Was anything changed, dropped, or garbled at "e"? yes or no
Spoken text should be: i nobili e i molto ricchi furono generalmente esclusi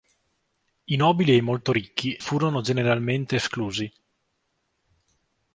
no